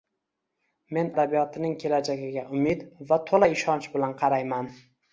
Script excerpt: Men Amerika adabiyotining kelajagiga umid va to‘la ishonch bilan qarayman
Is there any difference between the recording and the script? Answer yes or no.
yes